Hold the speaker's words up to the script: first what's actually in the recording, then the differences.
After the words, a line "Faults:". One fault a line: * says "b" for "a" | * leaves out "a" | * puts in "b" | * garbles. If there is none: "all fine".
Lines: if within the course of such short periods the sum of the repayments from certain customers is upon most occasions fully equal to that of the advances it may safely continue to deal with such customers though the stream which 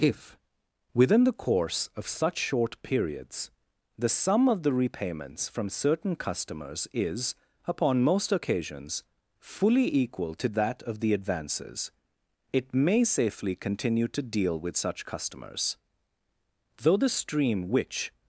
if within the course of such short periods the sum of the repayments from certain customers is upon most occasions fully equal to that of the advances it may safely continue to deal with such customers though the stream which
Faults:
all fine